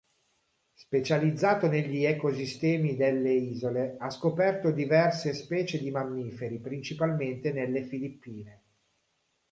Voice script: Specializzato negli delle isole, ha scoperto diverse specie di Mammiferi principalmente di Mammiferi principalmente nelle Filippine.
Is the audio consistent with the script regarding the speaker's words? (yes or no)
no